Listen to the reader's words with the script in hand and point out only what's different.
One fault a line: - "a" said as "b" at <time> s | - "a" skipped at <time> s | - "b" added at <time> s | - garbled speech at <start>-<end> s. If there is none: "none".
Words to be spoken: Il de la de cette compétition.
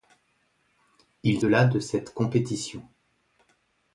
none